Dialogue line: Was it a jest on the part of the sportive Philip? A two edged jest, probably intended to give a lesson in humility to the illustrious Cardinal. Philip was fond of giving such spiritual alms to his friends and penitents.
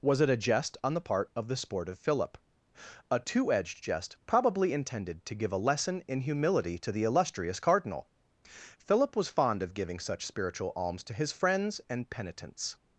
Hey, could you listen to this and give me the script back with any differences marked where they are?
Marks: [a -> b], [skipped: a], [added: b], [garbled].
Was it a jest on the part of the sportive Philip? A two edged jest, probably intended to give a lesson in humility to the illustrious Cardinal. Philip was fond of giving such spiritual alms to his friends and penitents.